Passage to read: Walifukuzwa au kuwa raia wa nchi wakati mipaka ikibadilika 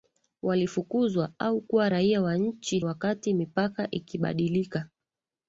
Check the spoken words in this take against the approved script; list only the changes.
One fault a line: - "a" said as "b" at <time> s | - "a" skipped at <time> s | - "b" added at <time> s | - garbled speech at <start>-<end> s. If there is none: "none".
none